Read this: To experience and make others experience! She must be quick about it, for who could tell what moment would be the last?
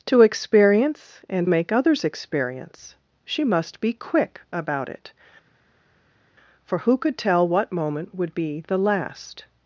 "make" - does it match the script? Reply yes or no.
yes